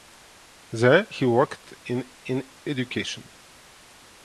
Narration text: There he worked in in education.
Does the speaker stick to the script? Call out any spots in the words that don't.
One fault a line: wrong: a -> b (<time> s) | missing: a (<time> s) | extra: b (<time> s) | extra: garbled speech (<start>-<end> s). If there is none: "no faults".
no faults